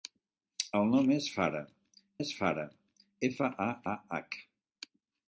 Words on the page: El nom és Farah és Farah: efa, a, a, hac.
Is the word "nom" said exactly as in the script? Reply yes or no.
yes